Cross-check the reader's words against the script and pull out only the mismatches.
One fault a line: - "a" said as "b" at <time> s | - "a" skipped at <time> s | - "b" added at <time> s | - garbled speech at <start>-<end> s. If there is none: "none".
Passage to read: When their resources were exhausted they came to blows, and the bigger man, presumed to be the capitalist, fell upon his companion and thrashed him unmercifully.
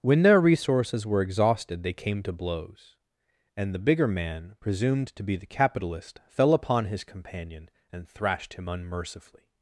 none